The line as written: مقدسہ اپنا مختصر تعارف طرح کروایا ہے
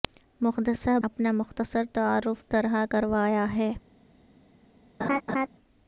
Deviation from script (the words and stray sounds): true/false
true